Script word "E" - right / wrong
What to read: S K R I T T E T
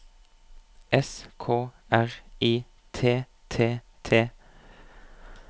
wrong